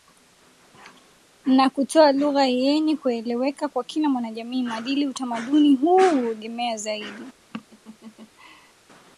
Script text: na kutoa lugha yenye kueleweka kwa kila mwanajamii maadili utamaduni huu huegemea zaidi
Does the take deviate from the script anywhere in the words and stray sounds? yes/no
yes